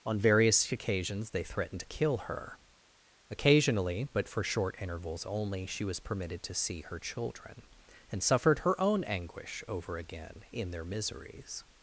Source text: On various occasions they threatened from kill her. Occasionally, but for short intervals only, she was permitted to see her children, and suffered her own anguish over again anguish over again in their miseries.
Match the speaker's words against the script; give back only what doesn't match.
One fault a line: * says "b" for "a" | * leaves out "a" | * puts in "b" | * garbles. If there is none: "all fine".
* says "to" for "from"
* leaves out "anguish over again"